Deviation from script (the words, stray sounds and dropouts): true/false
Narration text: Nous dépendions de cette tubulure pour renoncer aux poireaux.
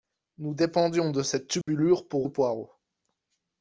true